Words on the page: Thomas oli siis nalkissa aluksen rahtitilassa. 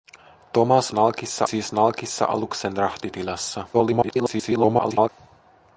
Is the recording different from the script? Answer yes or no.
yes